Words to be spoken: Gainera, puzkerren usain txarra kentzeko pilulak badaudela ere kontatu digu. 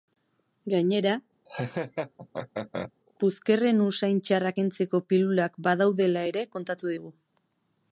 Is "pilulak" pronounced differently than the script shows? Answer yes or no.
no